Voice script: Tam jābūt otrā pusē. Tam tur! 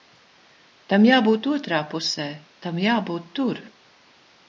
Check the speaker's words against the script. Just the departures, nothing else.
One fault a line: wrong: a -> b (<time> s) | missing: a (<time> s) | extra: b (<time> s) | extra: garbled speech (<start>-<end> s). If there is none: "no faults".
extra: jābūt (2.9 s)